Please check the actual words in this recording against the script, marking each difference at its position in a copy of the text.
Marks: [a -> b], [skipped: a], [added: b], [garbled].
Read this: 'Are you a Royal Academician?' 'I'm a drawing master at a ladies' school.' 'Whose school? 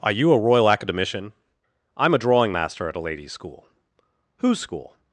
'Are you a Royal Academician?' 'I'm a drawing master at a ladies' school.' 'Whose school?